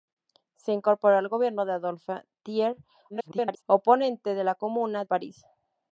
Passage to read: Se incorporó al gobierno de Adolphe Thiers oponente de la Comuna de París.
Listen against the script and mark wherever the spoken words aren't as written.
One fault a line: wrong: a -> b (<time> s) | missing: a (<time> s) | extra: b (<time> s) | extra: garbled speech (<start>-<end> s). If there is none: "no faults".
extra: garbled speech (3.1-3.6 s)
missing: de (5.0 s)